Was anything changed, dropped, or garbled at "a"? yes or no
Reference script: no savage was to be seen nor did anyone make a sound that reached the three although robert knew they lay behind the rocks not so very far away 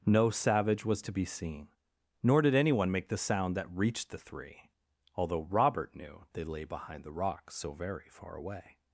yes